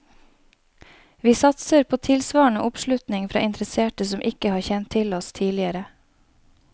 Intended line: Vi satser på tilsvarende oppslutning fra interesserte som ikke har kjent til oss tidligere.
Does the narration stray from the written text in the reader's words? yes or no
no